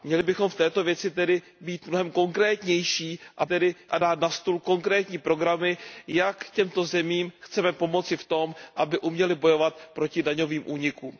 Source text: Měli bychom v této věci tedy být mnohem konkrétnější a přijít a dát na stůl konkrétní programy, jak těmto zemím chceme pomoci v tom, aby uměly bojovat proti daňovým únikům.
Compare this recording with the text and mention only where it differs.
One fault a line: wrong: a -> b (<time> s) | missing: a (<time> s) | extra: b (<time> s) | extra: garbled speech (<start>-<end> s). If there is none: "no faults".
wrong: přijít -> tedy (3.4 s)